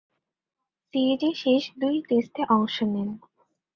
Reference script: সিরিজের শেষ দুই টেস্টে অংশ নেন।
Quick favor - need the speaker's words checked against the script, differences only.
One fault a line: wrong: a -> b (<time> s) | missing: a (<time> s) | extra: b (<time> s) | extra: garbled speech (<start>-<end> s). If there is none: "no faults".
no faults